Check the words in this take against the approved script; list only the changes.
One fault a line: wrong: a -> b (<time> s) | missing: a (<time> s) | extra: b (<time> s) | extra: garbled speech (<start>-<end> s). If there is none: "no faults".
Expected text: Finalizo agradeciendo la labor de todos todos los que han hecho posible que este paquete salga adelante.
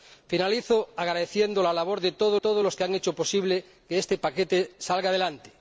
no faults